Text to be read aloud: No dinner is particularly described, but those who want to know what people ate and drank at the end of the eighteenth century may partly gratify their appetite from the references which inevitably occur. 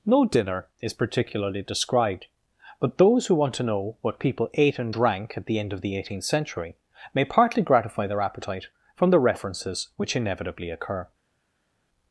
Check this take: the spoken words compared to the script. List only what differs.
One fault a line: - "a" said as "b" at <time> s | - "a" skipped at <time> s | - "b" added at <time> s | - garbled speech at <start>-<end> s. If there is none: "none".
none